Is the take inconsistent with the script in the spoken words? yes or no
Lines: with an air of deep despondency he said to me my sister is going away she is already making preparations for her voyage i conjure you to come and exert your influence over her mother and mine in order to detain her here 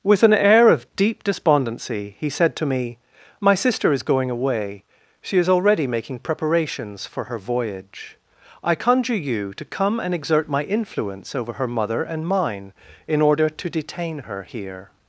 yes